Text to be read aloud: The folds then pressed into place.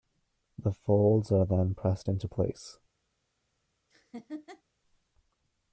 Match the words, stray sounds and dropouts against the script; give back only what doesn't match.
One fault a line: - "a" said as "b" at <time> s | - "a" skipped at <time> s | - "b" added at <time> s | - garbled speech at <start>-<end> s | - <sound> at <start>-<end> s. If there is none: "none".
- "are" added at 1.3 s
- laugh at 3.9-4.6 s